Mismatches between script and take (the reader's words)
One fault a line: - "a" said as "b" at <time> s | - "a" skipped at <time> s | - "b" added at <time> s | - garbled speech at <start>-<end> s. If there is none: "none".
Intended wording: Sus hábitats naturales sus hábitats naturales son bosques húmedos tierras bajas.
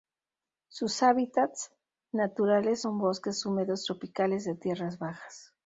- "sus hábitats naturales" skipped at 2.8 s
- "tropicales de" added at 3.8 s